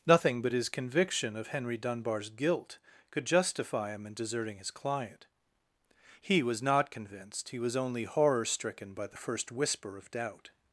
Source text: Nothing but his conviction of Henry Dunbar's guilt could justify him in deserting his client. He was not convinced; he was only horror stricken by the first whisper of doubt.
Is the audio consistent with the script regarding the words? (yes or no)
yes